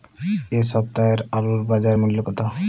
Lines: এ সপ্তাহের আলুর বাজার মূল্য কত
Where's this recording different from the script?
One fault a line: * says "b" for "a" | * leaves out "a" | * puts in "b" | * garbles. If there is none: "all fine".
all fine